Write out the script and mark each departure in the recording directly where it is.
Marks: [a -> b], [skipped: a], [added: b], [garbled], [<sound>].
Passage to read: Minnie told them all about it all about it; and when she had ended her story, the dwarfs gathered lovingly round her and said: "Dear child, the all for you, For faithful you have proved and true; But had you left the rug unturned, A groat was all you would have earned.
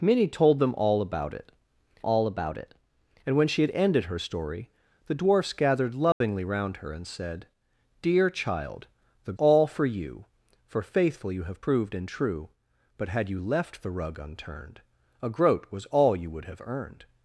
Minnie told them all about it all about it; and when she had ended her story, the dwarfs gathered lovingly [dropout] round her and said: "Dear child, the all for you, For faithful you have proved and true; But had you left the rug unturned, A groat was all you would have earned.